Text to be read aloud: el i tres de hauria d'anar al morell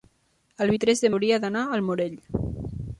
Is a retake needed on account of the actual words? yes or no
no